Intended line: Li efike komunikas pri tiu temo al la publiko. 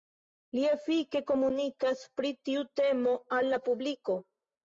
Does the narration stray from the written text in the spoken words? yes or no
no